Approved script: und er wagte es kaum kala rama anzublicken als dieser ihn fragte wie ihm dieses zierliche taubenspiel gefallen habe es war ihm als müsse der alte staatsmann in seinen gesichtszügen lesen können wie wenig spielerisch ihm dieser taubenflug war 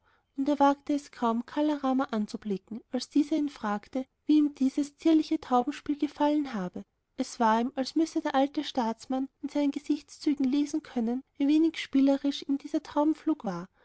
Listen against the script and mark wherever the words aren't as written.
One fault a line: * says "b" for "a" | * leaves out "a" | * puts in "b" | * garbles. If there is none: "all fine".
all fine